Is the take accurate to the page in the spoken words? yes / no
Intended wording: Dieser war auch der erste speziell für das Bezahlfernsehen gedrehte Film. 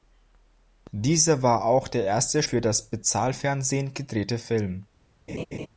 no